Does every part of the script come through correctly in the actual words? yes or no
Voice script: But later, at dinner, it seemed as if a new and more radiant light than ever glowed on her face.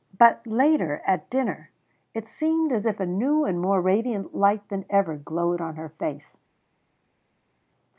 yes